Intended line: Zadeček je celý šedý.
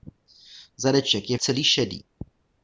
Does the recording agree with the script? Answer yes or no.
yes